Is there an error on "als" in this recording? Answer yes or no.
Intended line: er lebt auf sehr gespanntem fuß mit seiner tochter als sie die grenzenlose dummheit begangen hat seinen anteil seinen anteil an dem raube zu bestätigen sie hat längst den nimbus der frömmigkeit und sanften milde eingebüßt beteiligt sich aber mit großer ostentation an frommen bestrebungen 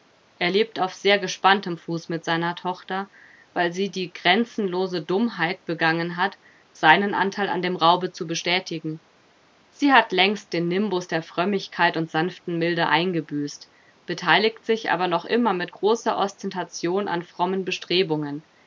yes